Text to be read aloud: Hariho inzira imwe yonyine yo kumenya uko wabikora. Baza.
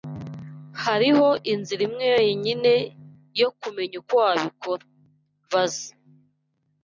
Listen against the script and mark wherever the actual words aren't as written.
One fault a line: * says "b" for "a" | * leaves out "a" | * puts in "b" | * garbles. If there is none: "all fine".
all fine